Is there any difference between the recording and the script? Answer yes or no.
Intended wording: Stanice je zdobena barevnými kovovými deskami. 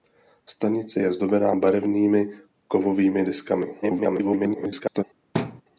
yes